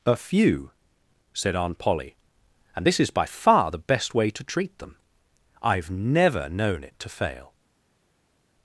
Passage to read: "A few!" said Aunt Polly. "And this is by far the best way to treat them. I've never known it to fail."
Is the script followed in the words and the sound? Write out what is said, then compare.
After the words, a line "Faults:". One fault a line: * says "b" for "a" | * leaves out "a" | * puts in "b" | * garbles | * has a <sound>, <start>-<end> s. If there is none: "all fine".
"A few!" said Aunt Polly. "And this is by far the best way to treat them. I've never known it to fail."
Faults:
all fine